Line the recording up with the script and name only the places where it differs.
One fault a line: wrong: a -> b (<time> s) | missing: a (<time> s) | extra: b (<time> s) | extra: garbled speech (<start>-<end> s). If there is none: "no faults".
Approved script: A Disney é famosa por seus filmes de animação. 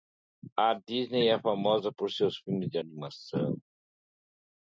no faults